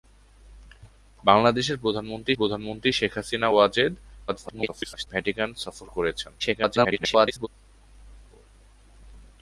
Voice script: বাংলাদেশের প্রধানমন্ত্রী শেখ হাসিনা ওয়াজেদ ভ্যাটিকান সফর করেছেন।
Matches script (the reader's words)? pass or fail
fail